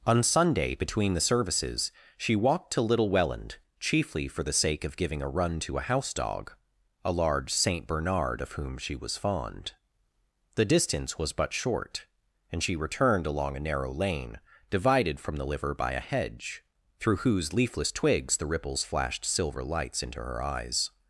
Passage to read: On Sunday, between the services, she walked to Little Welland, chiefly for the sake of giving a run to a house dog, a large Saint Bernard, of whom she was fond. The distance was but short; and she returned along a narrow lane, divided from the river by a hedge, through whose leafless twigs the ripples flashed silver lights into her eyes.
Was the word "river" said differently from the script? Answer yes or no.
yes